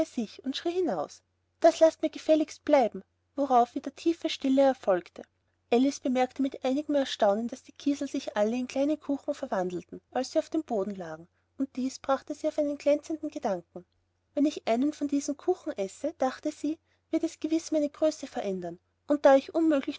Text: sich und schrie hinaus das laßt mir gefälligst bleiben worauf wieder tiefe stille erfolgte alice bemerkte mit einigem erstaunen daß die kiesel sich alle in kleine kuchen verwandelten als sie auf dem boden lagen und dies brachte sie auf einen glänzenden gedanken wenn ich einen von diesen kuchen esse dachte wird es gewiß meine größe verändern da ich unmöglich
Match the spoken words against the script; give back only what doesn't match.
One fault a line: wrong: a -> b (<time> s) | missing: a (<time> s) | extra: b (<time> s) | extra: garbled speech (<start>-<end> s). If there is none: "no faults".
extra: sie (16.5 s)
extra: und (19.1 s)